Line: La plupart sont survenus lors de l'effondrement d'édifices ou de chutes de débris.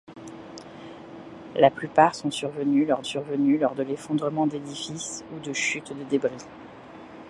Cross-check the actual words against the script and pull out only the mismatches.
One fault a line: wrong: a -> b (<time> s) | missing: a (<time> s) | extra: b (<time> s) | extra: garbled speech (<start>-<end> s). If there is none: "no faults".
extra: survenus lors (3.0 s)